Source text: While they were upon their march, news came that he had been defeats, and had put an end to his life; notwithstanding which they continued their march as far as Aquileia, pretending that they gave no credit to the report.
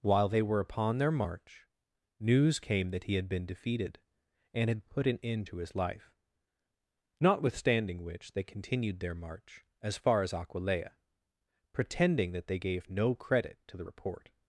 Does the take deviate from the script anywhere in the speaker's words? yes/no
yes